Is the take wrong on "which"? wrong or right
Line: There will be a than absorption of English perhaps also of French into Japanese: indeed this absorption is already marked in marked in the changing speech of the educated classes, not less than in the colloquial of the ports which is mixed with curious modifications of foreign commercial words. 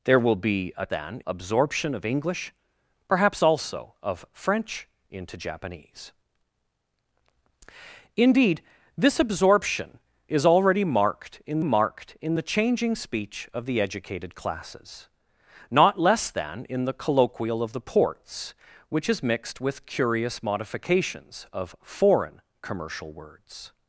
right